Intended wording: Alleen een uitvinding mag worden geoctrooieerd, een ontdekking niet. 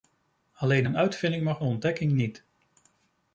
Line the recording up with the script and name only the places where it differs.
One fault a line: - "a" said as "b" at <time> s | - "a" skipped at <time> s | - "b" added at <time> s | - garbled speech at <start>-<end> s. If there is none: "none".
- "worden geoctrooieerd een" skipped at 1.6 s